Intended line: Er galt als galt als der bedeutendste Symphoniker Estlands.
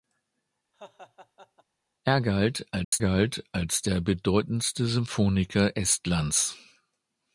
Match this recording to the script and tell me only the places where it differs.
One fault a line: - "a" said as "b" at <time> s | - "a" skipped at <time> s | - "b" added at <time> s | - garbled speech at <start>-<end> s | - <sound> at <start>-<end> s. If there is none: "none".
- laugh at 0.7-1.6 s
- dropout at 2.8-2.9 s